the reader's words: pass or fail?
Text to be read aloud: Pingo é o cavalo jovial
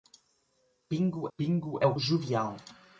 fail